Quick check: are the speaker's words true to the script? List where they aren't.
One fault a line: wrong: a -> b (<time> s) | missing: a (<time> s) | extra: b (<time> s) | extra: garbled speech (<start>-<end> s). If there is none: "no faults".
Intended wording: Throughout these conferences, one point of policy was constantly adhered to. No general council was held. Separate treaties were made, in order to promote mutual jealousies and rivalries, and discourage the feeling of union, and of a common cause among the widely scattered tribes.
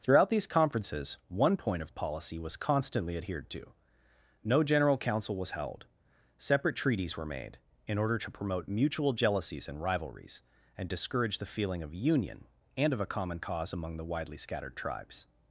no faults